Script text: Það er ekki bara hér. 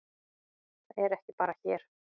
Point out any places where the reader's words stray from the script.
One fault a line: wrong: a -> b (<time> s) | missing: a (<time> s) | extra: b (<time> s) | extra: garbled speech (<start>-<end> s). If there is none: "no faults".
no faults